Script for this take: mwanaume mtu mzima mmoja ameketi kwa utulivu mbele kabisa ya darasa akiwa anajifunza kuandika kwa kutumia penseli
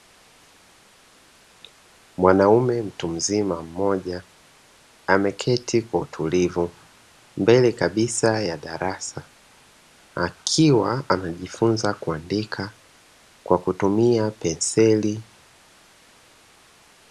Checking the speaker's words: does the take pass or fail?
pass